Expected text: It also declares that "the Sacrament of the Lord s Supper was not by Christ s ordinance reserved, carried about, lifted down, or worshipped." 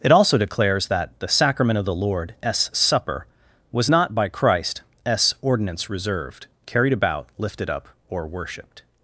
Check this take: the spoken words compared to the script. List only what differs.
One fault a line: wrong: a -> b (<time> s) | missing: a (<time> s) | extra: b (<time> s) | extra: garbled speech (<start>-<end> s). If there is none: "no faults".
wrong: down -> up (7.7 s)